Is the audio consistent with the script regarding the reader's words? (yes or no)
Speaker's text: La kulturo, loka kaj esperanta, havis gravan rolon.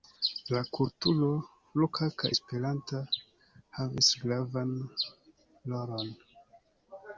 yes